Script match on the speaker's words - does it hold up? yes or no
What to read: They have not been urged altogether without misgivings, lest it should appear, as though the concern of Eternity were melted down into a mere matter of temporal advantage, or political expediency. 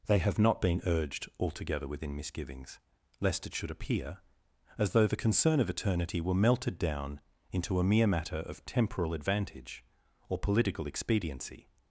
no